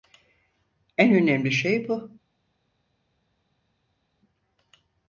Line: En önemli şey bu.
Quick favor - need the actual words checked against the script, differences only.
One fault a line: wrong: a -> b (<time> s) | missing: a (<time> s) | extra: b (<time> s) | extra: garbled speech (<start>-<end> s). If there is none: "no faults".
no faults